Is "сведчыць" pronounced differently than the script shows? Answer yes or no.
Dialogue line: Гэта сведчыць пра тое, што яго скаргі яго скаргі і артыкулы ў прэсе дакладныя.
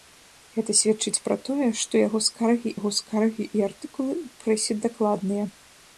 no